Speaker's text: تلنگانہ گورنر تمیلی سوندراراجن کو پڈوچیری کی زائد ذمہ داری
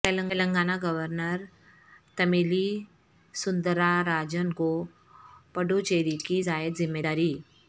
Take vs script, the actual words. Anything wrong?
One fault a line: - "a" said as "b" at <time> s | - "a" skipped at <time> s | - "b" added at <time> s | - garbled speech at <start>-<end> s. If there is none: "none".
none